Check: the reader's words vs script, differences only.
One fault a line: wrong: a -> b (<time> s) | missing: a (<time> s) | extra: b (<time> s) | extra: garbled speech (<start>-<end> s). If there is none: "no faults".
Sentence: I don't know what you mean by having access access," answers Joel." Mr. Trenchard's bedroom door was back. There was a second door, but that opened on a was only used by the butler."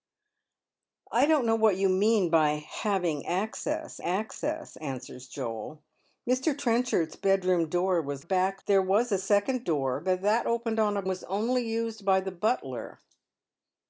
no faults